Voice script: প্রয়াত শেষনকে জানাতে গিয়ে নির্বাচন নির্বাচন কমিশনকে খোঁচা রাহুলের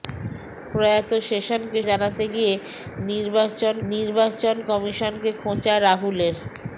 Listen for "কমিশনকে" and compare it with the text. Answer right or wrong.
right